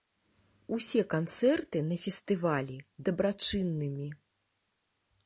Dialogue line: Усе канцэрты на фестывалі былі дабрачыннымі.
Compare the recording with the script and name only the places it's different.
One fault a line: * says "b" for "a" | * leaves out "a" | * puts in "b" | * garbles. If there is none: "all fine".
* leaves out "былі"